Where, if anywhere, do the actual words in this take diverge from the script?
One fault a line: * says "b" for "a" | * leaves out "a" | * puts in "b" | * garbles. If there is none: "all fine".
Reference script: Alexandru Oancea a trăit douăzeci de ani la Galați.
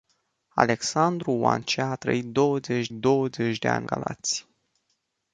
* puts in "douăzeci"
* leaves out "la"